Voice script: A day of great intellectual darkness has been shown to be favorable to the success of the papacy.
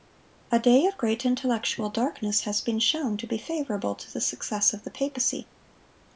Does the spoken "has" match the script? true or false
true